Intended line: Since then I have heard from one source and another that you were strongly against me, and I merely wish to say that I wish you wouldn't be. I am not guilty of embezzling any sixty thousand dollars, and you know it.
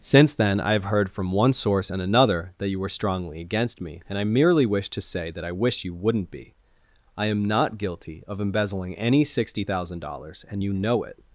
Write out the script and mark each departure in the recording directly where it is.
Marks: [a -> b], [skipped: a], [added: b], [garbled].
Since then I have heard from one source and another that you were strongly against me, and I merely wish to say that I wish you wouldn't be. I am not guilty of embezzling any sixty thousand dollars, and you know it.